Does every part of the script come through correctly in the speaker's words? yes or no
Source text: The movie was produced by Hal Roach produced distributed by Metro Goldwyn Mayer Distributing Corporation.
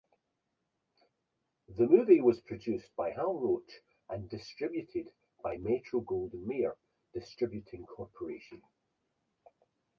no